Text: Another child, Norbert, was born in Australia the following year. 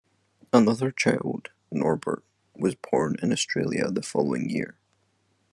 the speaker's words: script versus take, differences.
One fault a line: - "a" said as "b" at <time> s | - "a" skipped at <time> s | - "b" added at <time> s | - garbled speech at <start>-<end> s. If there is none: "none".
none